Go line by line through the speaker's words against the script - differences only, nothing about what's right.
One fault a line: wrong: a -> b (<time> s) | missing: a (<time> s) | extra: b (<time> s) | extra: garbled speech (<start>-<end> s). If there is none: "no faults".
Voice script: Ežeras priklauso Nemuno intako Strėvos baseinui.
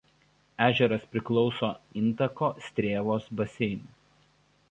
missing: Nemuno (1.7 s)